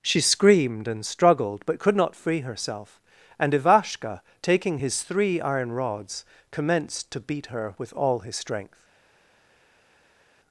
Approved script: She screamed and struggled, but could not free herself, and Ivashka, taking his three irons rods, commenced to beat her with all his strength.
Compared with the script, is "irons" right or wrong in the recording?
wrong